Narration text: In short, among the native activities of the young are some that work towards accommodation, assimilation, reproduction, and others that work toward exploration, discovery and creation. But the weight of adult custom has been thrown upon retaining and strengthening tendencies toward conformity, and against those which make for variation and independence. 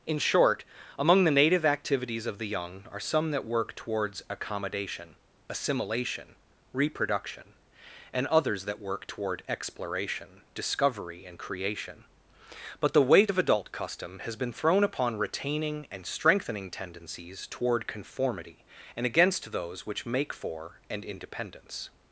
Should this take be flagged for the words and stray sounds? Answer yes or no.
yes